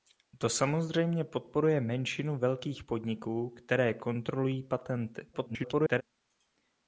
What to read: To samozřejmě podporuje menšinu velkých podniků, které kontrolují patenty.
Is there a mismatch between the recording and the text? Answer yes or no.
yes